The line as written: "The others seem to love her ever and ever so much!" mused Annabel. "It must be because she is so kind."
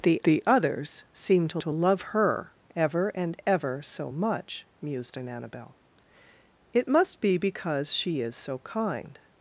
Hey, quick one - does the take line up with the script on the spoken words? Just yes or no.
no